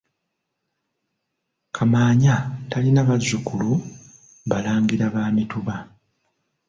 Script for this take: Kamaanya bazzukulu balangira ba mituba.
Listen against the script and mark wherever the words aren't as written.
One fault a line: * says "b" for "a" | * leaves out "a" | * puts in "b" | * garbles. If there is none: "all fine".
* puts in "talina"